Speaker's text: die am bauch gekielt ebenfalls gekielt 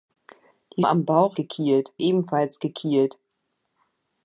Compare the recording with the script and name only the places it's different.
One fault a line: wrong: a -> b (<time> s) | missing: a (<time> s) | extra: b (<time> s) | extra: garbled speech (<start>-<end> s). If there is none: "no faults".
no faults